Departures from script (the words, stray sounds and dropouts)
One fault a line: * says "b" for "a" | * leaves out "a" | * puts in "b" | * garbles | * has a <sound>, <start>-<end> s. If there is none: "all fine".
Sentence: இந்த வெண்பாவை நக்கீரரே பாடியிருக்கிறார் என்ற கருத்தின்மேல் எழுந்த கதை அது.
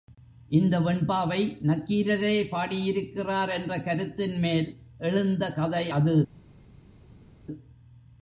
all fine